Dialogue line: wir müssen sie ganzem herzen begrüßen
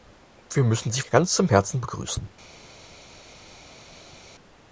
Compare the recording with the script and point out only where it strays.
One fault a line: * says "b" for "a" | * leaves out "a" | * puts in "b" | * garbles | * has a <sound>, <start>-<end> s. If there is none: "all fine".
all fine